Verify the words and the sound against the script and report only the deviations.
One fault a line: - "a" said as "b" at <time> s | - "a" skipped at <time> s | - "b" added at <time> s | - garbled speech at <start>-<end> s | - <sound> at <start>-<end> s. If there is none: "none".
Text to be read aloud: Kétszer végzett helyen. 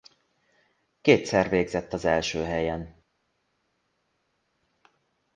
- "az első" added at 1.9 s